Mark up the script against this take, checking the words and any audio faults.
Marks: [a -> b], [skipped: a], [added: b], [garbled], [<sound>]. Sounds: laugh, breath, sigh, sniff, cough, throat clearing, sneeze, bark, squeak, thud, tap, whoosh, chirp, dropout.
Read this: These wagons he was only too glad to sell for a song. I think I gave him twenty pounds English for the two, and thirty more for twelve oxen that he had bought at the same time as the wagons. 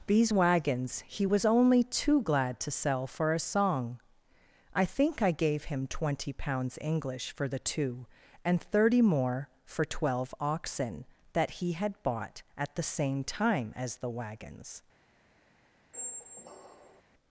These wagons he was only too glad to sell for a song. I think I gave him twenty pounds English for the two, and thirty more for twelve oxen that he had bought at the same time as the wagons. [squeak]